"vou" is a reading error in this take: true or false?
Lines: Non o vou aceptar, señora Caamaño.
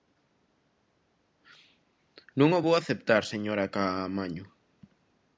false